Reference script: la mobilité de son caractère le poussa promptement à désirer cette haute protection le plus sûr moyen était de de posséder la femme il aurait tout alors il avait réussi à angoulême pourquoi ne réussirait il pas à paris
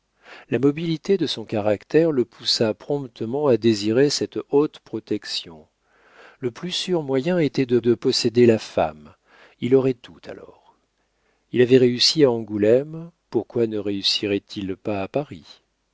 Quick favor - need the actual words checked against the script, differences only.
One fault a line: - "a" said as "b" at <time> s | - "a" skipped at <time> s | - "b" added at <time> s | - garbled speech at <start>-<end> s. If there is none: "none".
none